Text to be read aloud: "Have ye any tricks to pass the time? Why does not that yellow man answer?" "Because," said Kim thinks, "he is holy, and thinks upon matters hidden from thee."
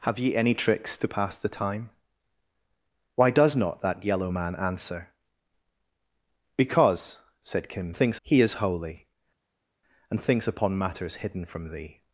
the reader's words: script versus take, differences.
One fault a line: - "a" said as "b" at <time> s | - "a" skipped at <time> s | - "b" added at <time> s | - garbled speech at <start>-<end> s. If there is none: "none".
none